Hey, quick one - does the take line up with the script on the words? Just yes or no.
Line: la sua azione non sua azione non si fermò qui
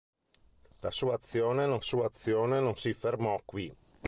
yes